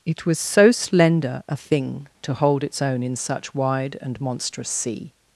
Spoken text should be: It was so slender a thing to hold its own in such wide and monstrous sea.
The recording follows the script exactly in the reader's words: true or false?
true